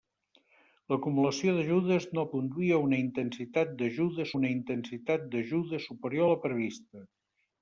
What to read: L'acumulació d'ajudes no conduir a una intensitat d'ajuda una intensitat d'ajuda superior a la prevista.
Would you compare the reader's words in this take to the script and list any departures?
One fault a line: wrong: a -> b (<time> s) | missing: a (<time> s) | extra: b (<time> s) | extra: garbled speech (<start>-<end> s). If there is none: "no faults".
no faults